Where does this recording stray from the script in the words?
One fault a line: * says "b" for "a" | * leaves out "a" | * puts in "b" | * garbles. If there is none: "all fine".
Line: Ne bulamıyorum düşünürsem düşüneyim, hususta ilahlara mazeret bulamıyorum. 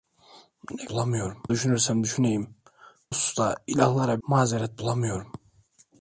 all fine